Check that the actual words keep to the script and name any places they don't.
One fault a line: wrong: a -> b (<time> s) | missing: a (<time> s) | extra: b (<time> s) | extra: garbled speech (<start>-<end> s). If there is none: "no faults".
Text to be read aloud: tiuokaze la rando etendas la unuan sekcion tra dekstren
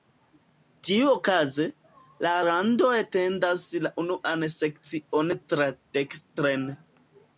no faults